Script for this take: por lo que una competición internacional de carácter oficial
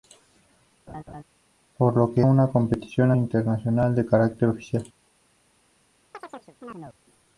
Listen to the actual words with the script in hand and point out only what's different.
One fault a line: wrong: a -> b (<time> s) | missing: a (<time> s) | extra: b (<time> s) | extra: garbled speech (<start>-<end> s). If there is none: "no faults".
no faults